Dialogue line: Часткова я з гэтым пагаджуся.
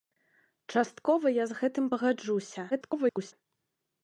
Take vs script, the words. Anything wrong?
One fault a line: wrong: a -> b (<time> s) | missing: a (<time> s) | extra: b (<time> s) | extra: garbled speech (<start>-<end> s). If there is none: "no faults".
extra: garbled speech (2.7-3.3 s)